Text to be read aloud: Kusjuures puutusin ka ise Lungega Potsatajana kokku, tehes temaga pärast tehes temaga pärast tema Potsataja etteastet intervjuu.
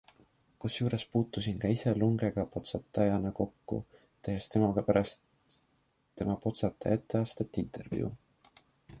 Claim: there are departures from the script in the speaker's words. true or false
true